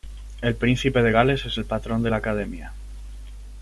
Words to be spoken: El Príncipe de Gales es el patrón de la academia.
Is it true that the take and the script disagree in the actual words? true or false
false